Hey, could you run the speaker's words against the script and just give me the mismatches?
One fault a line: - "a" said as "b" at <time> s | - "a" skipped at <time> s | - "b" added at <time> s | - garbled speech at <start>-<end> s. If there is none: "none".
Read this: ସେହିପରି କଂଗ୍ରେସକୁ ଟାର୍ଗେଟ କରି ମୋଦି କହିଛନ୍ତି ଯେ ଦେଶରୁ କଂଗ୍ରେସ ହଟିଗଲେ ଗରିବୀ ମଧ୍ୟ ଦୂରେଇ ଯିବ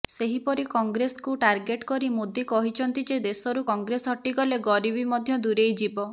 none